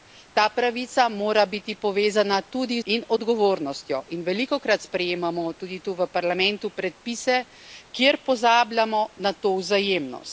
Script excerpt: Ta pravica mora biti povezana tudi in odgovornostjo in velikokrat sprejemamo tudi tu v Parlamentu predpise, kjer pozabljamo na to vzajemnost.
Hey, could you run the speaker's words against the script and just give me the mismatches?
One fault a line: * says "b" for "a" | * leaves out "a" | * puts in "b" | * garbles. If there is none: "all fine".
all fine